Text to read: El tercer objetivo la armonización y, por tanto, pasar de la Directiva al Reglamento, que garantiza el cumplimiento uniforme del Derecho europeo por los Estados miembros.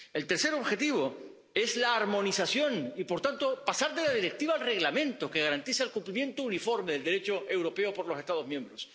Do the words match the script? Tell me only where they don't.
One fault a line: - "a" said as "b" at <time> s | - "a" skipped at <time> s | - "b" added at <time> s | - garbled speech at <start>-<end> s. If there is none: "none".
- "es" added at 1.5 s